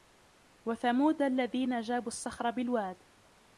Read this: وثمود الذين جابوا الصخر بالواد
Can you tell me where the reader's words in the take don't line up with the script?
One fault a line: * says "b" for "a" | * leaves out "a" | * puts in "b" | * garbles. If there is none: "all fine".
all fine